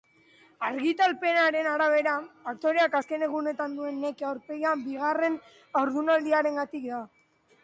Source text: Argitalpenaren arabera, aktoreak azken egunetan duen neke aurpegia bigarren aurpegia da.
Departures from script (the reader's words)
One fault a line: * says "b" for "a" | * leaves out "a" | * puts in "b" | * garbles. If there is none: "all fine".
* says "haurdunaldiarengatik" for "aurpegia"